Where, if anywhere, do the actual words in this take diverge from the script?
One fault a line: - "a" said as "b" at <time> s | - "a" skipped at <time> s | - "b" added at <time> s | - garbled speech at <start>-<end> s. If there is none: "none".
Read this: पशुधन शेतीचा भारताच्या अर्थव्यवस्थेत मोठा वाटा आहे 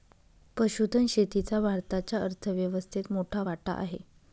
none